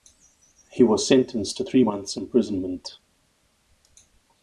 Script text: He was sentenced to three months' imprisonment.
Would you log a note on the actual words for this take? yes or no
no